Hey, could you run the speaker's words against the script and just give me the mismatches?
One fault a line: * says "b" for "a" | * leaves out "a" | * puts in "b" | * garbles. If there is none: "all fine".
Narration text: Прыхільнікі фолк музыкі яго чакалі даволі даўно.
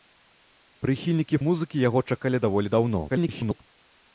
* leaves out "фолк"
* garbles